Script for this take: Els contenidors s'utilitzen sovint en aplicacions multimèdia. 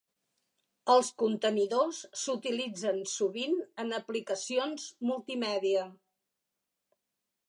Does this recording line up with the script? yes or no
yes